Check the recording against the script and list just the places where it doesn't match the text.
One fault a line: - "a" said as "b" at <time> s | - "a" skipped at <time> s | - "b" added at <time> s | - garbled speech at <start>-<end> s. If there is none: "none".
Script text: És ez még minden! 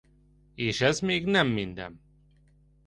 - "nem" added at 1.2 s